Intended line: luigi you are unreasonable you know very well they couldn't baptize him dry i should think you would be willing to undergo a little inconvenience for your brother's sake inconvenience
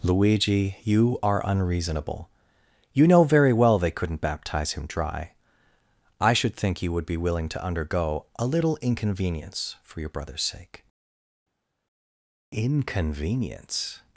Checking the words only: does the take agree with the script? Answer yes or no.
yes